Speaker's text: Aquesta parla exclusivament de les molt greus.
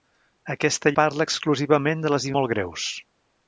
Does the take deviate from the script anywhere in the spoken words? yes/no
no